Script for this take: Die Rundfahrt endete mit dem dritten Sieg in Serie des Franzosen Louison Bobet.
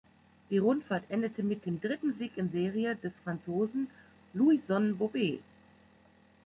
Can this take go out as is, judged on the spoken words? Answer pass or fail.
pass